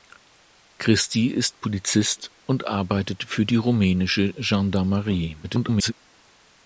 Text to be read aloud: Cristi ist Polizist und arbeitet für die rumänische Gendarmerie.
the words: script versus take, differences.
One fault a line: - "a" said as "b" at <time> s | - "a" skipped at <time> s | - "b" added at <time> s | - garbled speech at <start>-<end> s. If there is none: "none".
- garbled speech at 5.4-5.9 s